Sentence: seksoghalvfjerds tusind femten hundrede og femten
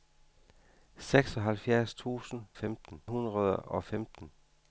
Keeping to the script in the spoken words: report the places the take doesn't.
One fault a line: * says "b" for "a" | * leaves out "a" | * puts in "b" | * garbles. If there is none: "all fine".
all fine